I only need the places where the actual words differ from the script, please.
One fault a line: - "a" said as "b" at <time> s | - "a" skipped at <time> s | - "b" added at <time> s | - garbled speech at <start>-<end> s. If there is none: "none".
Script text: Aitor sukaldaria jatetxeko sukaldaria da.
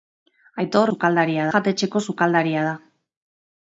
none